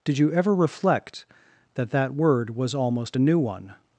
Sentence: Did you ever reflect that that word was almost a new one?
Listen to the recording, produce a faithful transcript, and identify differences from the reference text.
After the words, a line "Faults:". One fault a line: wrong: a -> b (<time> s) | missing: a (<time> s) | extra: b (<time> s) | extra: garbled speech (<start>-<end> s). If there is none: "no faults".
Did you ever reflect that that word was almost a new one?
Faults:
no faults